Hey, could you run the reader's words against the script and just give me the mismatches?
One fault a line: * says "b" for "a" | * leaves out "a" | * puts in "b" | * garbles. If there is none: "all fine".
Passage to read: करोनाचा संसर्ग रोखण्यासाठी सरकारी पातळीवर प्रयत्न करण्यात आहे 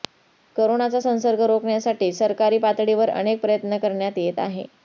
* puts in "अनेक"
* puts in "येत"